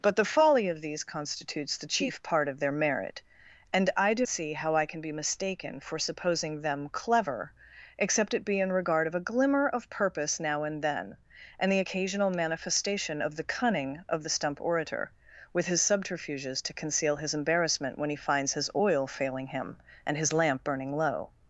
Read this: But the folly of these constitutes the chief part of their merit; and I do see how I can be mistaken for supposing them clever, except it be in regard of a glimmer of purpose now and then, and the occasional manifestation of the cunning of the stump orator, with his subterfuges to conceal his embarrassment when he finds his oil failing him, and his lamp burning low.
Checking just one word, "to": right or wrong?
right